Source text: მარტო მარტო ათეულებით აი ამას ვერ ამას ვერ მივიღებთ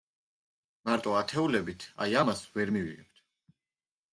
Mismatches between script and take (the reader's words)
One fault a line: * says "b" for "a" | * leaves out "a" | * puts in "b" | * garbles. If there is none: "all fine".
* leaves out "მარტო"
* leaves out "ამას ვერ"